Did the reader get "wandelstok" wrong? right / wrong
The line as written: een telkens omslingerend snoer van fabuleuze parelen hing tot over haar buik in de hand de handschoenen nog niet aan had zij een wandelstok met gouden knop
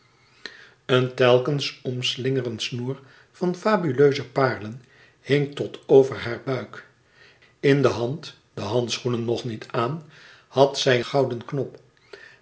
wrong